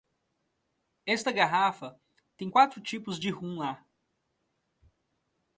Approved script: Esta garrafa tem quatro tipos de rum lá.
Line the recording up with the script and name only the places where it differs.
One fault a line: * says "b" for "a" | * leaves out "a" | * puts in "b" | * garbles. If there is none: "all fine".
all fine